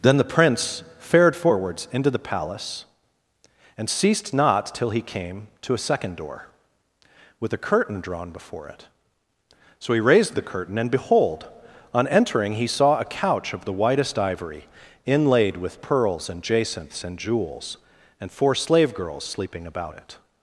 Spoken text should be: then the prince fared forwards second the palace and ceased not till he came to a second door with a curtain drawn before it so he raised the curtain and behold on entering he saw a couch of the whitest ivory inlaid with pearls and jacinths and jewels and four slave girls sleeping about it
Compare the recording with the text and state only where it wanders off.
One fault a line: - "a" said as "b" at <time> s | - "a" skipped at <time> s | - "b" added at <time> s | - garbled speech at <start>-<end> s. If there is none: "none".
- "second" said as "into" at 1.9 s